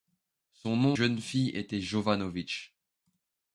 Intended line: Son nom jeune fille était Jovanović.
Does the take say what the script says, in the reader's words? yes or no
yes